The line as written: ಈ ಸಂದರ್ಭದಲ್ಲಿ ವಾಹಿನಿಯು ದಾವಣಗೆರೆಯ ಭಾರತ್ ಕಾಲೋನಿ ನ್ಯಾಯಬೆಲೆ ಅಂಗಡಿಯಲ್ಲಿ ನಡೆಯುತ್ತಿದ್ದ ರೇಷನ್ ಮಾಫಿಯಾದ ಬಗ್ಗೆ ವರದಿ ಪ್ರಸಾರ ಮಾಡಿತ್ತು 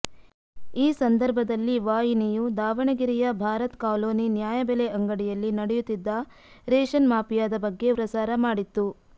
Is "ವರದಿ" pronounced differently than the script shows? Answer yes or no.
yes